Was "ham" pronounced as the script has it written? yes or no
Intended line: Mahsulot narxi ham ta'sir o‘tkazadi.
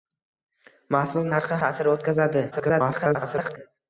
no